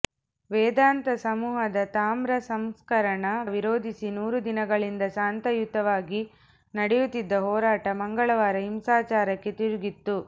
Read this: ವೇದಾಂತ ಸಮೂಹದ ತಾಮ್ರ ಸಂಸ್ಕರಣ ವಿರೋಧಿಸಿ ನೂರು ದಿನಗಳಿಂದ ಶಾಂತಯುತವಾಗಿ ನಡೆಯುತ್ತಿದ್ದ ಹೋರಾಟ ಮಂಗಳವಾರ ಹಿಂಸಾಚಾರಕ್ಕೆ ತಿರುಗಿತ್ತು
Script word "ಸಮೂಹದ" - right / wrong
right